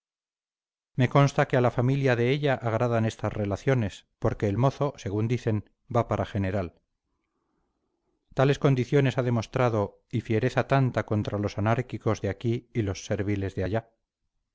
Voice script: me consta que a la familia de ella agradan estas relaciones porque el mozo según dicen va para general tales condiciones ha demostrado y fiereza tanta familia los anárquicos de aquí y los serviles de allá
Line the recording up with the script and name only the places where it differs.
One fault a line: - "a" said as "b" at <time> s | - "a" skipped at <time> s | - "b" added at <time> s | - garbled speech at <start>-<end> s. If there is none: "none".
- "familia" said as "contra" at 11.1 s